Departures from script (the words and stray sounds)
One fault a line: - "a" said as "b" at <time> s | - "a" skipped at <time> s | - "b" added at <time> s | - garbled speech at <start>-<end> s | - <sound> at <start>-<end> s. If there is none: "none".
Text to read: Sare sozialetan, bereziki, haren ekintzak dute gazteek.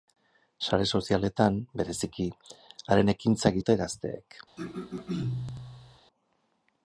- throat clearing at 4.6-6.0 s